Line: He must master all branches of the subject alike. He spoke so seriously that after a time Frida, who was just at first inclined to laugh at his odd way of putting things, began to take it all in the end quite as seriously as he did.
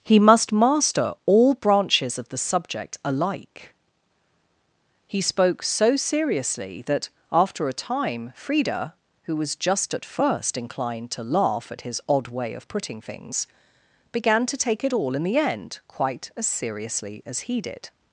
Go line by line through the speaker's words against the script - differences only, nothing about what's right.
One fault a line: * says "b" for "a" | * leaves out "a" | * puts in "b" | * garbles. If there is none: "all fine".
all fine